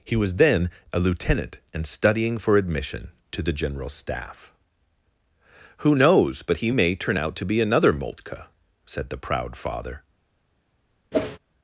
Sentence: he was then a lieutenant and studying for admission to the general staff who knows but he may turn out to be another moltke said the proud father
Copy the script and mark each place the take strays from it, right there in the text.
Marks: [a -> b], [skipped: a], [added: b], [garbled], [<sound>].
he was then a lieutenant and studying for admission to the general staff who knows but he may turn out to be another moltke said the proud father [whoosh]